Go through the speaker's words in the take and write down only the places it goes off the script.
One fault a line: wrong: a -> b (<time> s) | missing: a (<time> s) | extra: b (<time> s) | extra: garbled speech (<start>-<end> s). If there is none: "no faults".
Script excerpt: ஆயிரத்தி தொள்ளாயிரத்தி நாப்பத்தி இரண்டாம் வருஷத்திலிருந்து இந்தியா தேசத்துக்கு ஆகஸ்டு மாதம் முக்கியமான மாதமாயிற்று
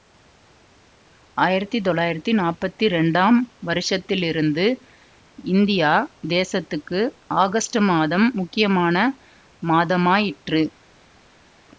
no faults